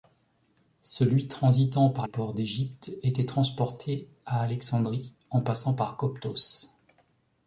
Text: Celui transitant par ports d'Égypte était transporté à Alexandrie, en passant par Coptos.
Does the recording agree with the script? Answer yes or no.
yes